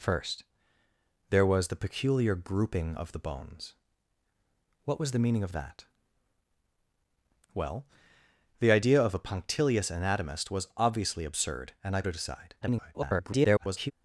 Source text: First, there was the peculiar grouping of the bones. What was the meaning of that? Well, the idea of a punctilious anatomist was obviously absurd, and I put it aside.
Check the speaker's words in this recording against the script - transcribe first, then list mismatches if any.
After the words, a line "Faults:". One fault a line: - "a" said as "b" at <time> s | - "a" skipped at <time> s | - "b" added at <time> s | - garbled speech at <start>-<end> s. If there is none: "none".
First, there was the peculiar grouping of the bones. What was the meaning of that? Well, the idea of a punctilious anatomist was obviously absurd, and I it aside. [garbled]
Faults:
- "put" skipped at 12.0 s
- garbled speech at 12.6-13.9 s